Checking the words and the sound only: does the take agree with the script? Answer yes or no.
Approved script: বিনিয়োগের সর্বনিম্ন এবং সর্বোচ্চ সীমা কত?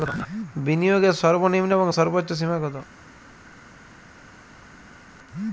yes